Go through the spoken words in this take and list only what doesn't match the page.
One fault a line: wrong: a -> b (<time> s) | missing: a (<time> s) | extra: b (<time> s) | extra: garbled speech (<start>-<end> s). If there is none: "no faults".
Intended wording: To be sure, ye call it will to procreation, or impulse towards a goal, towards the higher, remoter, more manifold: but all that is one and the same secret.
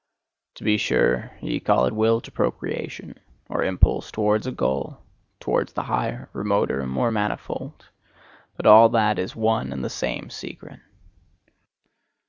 no faults